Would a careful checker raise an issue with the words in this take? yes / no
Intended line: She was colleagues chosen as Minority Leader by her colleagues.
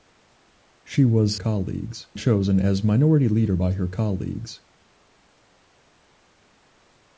no